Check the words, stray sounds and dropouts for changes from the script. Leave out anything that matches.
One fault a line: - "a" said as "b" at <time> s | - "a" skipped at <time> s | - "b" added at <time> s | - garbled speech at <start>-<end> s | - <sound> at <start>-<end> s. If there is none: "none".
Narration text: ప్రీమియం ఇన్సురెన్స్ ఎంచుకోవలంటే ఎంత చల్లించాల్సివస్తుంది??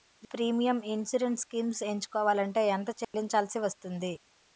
- "స్కీమ్స్" added at 1.4 s
- dropout at 3.0-3.1 s